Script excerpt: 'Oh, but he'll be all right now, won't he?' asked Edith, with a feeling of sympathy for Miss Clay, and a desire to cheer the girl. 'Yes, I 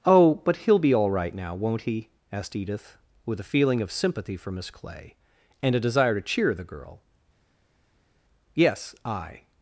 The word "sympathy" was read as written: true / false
true